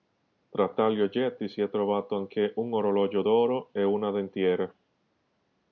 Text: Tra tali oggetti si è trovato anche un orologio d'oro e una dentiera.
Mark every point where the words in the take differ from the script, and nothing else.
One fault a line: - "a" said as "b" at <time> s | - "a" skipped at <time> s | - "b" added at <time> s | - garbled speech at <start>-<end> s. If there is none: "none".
none